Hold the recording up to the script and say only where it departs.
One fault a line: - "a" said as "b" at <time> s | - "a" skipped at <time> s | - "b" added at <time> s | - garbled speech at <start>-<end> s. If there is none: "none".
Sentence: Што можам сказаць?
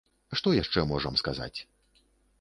- "яшчэ" added at 0.6 s